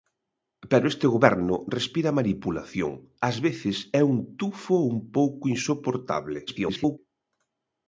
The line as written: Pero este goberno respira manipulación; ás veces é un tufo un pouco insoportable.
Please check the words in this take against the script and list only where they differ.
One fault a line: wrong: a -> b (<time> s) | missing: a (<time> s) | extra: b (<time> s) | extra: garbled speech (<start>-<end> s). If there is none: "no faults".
extra: garbled speech (6.5-7.0 s)